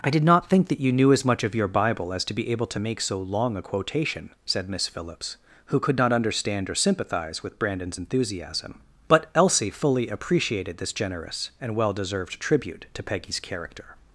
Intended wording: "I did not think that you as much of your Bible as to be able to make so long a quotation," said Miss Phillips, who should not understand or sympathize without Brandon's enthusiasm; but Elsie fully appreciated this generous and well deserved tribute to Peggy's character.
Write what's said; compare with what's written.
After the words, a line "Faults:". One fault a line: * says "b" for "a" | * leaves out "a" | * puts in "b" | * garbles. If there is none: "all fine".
"I did not think that you knew as much of your Bible as to be able to make so long a quotation," said Miss Phillips, who could not understand or sympathize with Brandon's enthusiasm; but Elsie fully appreciated this generous and well deserved tribute to Peggy's character.
Faults:
* puts in "knew"
* says "could" for "should"
* says "with" for "without"